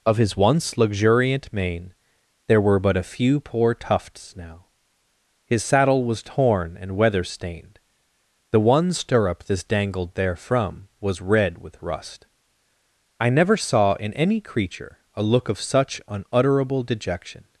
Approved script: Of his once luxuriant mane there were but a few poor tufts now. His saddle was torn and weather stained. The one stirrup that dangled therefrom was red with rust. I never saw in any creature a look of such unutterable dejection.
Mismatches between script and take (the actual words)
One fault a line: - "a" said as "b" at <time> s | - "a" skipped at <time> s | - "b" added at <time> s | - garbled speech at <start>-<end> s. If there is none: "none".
- "that" said as "this" at 9.4 s